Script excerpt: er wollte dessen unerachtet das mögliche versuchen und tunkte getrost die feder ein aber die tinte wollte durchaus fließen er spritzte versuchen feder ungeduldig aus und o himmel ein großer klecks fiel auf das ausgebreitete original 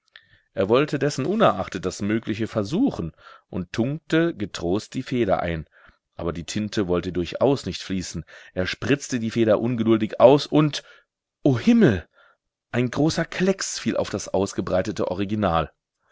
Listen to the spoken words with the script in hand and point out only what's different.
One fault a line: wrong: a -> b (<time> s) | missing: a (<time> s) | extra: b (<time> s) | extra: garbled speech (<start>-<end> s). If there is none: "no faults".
extra: nicht (7.6 s)
wrong: versuchen -> die (9.2 s)